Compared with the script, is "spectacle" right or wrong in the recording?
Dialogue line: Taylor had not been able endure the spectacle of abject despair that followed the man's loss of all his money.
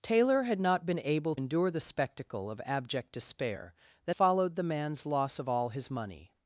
right